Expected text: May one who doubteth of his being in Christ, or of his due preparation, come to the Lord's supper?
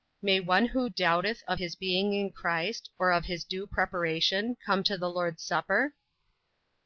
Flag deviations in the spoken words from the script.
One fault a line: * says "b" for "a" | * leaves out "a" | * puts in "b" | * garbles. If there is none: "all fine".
all fine